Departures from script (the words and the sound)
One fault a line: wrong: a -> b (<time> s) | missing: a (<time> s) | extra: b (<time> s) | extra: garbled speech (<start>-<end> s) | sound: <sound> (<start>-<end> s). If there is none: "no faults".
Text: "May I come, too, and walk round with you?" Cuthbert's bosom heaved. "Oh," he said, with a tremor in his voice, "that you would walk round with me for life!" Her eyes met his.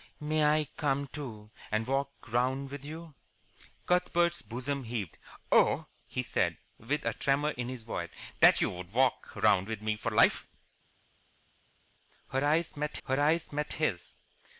extra: her eyes met (13.1 s)